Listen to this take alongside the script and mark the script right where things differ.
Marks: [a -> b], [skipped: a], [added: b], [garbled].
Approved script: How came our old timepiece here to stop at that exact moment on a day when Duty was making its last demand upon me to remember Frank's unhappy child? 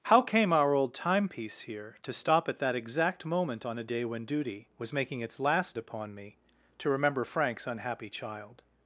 How came our old timepiece here to stop at that exact moment on a day when Duty was making its last [skipped: demand] upon me to remember Frank's unhappy child?